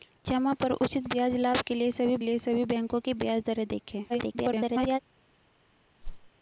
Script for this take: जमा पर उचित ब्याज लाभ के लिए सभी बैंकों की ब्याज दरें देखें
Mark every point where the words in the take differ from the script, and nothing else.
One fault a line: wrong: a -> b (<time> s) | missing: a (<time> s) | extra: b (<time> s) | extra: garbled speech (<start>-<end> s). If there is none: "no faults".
extra: लिए सभी (2.2 s)
extra: garbled speech (4.1-5.0 s)